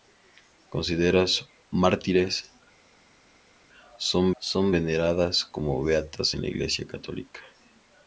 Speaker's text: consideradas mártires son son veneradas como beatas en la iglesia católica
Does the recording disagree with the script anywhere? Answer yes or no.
no